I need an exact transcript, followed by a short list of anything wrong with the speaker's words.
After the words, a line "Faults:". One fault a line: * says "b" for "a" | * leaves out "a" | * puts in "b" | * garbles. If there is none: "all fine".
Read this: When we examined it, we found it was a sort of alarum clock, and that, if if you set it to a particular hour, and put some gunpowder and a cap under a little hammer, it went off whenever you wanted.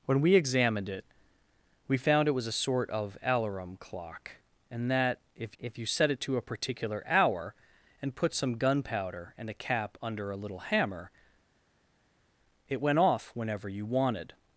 When we examined it, we found it was a sort of alarum clock, and that, if if you set it to a particular hour, and put some gunpowder and a cap under a little hammer, it went off whenever you wanted.
Faults:
all fine